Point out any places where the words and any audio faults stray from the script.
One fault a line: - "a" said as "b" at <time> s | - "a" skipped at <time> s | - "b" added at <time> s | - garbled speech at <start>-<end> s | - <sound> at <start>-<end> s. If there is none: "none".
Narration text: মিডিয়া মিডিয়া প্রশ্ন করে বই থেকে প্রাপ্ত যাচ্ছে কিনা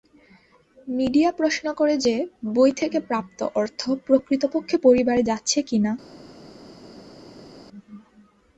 - "মিডিয়া" skipped at 1.3 s
- "যে" added at 2.0 s
- "অর্থ প্রকৃতপক্ষে পরিবারে" added at 3.5 s